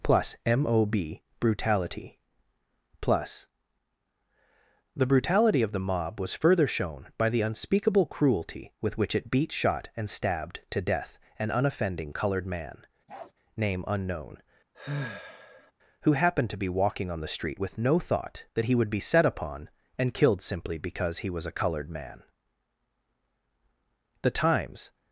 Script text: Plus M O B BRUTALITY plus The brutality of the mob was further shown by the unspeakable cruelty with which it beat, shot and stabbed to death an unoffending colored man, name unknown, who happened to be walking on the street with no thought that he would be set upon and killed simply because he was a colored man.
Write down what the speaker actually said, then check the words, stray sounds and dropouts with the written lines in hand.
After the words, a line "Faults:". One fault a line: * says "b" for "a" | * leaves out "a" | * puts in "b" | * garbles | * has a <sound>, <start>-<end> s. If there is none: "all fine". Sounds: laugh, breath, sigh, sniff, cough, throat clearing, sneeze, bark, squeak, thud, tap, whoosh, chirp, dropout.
Plus M O B BRUTALITY plus The brutality of the mob was further shown by the unspeakable cruelty with which it beat, shot and stabbed to death an unoffending colored man, name unknown, who happened to be walking on the street with no thought that he would be set upon and killed simply because he was a colored man. The Times
Faults:
* has a bark, 13.1-13.3 s
* has a sigh, 14.7-15.7 s
* puts in "The Times"